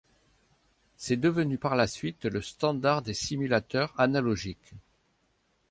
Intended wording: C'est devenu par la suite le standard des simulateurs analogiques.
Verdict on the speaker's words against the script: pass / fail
pass